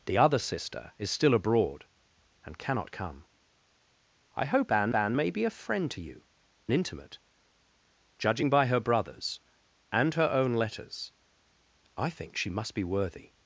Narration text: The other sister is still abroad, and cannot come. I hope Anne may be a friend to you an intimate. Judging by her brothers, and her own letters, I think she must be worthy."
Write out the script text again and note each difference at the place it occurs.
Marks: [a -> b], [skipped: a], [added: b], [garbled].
The other sister is still abroad, and cannot come. I hope Anne [added: Anne] may be a friend to you [skipped: an] intimate. Judging by her brothers, and her own letters, I think she must be worthy."